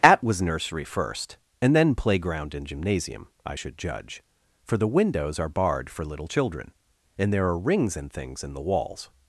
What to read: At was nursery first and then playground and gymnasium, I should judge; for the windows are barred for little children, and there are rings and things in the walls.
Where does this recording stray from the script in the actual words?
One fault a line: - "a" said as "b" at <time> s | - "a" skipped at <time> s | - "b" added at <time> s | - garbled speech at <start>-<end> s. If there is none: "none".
none